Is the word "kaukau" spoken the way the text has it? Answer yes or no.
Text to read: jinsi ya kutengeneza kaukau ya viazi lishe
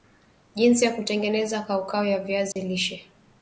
yes